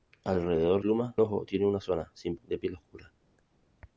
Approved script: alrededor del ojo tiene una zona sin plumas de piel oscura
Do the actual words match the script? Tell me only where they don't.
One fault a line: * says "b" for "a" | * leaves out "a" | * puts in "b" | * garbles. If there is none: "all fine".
* says "plumas" for "del"
* leaves out "plumas"